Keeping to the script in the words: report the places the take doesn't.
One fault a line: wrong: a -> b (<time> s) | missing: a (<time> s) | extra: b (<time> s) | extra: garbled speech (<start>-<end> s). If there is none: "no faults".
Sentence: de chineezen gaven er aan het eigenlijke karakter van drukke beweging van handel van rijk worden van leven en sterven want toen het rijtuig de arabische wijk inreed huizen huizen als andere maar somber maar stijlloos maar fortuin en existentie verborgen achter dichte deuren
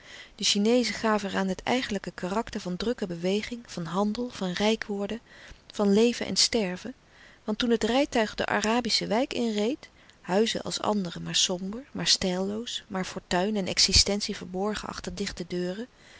missing: huizen (10.6 s)